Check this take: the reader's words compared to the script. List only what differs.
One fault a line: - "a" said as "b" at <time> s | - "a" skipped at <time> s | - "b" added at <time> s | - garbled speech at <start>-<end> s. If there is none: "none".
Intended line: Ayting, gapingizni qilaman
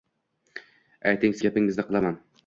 none